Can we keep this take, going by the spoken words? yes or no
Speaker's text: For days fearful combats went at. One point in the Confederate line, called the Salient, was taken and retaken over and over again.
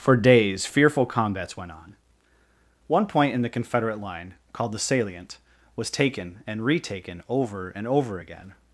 no